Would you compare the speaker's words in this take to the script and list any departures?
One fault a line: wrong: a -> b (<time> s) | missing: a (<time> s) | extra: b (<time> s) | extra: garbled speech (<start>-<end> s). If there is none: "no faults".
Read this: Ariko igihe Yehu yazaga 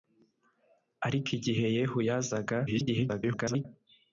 extra: garbled speech (2.7-3.7 s)